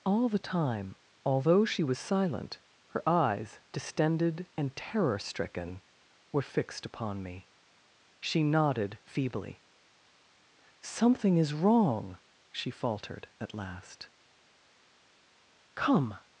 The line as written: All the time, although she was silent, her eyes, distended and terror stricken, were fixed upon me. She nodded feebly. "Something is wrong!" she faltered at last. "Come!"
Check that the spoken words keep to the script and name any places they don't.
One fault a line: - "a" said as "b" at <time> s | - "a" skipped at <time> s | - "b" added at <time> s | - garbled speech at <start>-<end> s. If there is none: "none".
none